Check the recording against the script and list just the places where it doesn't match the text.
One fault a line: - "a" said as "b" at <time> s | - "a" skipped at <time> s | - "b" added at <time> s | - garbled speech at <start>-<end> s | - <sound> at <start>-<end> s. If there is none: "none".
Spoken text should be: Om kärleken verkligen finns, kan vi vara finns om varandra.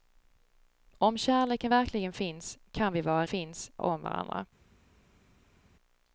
none